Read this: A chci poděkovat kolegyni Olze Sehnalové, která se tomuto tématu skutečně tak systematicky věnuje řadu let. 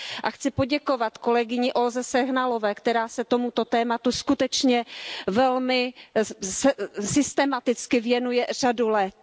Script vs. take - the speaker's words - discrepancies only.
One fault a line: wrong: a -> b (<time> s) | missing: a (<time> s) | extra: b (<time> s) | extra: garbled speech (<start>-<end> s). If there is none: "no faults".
wrong: tak -> velmi (5.3 s)